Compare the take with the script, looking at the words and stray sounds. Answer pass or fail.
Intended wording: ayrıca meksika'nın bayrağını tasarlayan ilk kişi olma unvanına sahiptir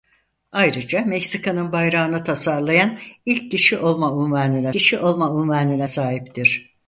fail